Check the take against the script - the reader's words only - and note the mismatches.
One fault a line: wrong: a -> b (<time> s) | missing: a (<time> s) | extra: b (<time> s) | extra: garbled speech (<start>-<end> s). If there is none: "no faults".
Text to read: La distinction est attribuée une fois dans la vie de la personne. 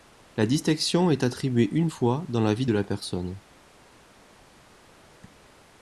no faults